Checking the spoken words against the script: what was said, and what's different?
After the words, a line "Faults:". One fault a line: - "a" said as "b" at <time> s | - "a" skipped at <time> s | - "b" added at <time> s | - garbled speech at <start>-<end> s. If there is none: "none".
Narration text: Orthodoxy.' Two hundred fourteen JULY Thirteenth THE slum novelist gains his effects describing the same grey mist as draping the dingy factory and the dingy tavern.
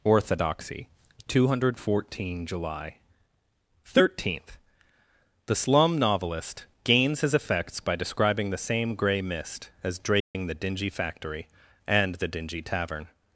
Orthodoxy.' Two hundred fourteen JULY Thirteenth THE slum novelist gains his effects by describing the same grey mist as draping the dingy factory and the dingy tavern.
Faults:
- "by" added at 7.8 s